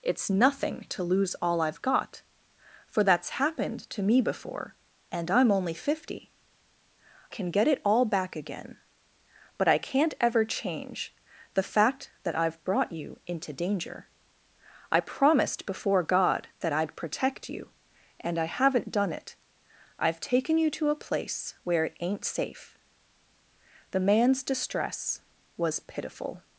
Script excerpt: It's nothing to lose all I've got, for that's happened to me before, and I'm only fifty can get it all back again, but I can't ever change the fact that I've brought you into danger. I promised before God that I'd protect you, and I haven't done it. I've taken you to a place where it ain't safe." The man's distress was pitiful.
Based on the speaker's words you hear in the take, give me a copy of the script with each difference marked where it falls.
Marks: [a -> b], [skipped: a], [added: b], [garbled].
It's nothing to lose all I've got, for that's happened to me before, and I'm only fifty can get it all back again, but I can't ever change the fact that I've brought you into danger. I promised before God that I'd protect you, and I haven't done it. I've taken you to a place where it ain't safe." The man's distress was pitiful.